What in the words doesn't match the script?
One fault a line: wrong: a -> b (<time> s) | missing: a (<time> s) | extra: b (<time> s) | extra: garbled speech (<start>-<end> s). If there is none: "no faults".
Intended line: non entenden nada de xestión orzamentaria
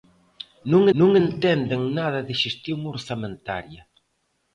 extra: non (1.0 s)